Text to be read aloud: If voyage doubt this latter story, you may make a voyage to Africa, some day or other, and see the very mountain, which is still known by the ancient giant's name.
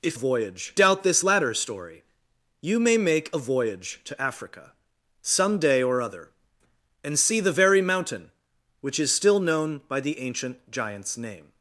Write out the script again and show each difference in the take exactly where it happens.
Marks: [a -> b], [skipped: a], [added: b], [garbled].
If voyage doubt this latter story, you may make a voyage to Africa, some day or other, and see the very mountain, which is still known by the ancient giant's name.